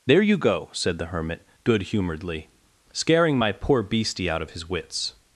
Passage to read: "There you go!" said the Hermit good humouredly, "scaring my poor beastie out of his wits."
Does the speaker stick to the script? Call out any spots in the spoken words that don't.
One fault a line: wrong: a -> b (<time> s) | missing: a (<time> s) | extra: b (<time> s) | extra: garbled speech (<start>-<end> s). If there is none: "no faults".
no faults